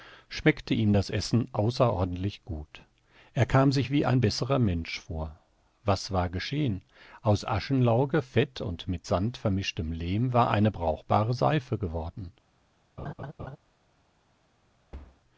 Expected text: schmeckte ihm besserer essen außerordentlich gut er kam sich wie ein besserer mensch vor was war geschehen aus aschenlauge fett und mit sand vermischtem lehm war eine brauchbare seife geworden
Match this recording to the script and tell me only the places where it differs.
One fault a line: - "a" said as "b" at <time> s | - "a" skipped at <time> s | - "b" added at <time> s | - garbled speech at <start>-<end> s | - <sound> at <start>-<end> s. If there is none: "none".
- "besserer" said as "das" at 0.9 s
- laugh at 13.0-13.6 s
- thud at 14.9-15.2 s